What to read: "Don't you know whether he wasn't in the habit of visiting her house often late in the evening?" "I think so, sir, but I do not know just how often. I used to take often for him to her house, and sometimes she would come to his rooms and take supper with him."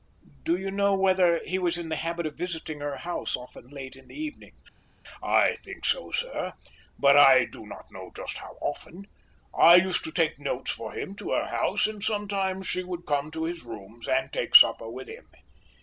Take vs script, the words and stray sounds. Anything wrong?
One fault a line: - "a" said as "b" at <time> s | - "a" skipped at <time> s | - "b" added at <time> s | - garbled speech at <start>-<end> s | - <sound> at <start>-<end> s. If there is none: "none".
- "Don't" said as "Do" at 0.4 s
- "wasn't" said as "was" at 1.6 s
- "often" said as "notes" at 10.4 s